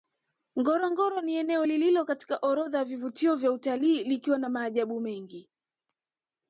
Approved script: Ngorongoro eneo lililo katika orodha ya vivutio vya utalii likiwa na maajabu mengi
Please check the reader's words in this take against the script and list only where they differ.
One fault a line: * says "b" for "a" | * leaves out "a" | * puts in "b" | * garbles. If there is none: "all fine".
* puts in "ni"